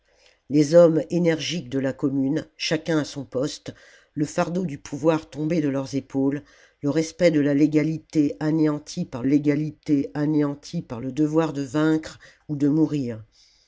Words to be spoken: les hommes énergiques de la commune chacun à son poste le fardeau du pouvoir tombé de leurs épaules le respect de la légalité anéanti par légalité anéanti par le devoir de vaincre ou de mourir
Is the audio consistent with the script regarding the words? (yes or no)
yes